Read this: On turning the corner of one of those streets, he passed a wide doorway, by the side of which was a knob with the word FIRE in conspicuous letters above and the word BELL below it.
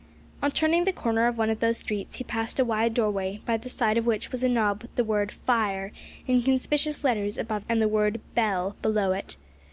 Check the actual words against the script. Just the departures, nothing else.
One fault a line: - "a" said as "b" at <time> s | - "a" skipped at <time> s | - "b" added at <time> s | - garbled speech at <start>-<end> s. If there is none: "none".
none